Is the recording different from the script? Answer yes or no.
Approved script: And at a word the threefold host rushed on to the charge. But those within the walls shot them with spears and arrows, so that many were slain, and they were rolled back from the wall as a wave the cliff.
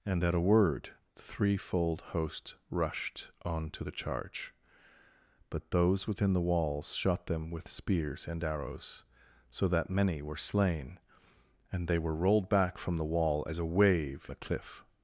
no